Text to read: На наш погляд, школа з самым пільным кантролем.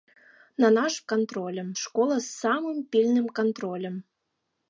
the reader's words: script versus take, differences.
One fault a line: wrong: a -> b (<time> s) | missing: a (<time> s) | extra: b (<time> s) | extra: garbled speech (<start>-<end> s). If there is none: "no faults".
wrong: погляд -> кантролем (1.1 s)